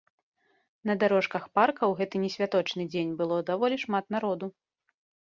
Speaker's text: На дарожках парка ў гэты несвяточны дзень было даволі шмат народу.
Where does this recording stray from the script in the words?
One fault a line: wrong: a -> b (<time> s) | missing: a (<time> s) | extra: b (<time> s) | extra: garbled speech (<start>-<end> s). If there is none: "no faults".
no faults